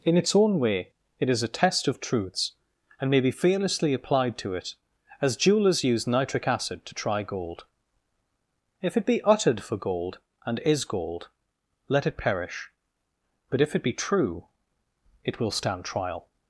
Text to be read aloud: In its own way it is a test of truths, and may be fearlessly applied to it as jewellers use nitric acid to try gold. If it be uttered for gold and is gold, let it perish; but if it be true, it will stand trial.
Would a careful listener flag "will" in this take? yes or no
no